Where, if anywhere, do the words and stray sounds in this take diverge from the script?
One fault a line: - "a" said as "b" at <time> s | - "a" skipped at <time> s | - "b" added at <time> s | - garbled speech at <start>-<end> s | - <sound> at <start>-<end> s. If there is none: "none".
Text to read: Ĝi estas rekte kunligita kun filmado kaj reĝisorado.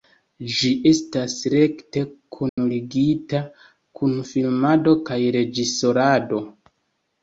- dropout at 2.5-2.6 s